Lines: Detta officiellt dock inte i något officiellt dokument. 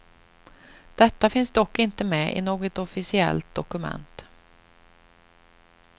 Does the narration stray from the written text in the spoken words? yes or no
yes